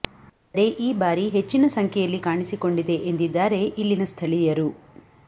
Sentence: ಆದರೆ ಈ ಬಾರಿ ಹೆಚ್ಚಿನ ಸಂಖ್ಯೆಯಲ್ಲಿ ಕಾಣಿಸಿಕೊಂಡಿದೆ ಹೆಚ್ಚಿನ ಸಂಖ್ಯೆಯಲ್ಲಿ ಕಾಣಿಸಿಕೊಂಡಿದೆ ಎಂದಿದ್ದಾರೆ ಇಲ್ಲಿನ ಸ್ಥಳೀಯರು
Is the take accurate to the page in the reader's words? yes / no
no